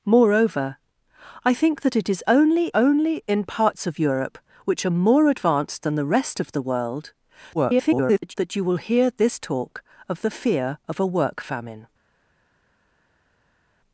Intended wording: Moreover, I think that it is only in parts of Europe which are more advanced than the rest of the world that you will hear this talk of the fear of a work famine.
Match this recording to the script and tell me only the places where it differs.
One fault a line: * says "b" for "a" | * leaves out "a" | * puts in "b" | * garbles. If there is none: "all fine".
* puts in "only"
* garbles